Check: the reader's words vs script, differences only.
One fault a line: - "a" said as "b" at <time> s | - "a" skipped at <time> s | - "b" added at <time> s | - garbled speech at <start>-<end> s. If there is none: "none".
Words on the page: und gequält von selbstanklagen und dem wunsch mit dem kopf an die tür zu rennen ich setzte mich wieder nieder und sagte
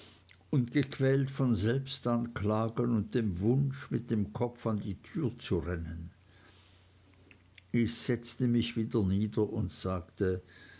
none